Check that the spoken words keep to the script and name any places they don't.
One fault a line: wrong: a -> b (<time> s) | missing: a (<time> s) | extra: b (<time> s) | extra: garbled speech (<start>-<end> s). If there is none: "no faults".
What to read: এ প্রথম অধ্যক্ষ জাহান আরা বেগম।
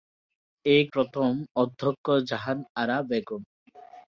no faults